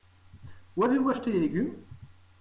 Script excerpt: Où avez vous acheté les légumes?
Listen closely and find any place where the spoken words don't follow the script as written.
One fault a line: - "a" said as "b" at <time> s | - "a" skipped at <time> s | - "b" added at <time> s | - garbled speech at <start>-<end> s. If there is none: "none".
none